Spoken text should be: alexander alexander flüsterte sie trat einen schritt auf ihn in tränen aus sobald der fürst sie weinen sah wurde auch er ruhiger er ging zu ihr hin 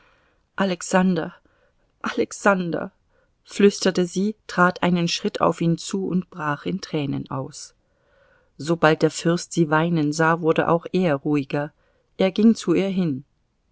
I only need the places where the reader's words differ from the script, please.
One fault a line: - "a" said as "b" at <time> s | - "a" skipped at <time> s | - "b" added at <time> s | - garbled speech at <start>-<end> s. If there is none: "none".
- "zu und brach" added at 5.8 s